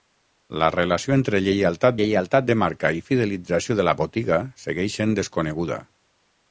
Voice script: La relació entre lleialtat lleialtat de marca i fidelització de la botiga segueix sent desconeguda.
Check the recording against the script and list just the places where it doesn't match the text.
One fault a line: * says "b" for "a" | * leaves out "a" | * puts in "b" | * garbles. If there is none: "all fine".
all fine